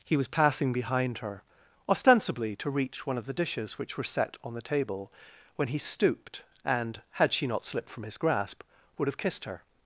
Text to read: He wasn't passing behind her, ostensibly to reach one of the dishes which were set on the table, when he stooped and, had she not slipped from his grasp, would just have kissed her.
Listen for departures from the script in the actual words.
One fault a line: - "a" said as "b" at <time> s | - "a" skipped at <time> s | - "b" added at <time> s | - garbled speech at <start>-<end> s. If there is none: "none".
- "wasn't" said as "was" at 0.2 s
- "just" skipped at 9.1 s